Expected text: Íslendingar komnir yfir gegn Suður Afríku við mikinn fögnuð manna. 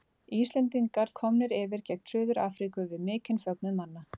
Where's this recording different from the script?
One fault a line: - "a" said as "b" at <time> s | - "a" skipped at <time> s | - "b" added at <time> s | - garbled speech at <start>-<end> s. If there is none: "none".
none